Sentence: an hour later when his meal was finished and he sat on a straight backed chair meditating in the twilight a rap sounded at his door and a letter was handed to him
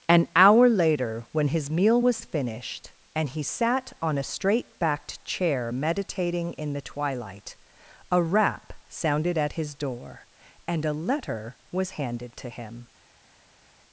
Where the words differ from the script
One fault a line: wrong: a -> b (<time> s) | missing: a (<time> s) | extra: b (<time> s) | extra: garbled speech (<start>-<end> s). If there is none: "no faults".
no faults